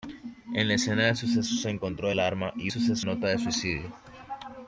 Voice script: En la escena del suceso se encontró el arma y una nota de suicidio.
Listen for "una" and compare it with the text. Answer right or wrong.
wrong